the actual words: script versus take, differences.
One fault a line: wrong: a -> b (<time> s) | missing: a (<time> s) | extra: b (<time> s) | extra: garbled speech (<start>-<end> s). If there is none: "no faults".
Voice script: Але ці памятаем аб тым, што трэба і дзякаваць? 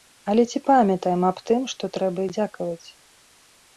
no faults